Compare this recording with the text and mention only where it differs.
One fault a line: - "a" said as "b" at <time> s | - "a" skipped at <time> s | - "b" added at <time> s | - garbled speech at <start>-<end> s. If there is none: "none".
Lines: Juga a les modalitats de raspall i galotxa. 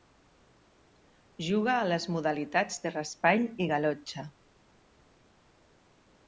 none